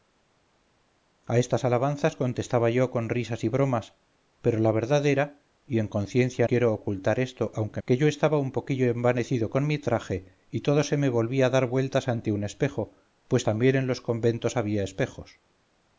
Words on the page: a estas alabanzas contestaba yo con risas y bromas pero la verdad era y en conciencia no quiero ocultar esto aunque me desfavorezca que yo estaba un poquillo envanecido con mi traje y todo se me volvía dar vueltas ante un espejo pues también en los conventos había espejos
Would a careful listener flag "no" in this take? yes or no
yes